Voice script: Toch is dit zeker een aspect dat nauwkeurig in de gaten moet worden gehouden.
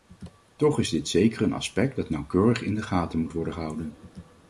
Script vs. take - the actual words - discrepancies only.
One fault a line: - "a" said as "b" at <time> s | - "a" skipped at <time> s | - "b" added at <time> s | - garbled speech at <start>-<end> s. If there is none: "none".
none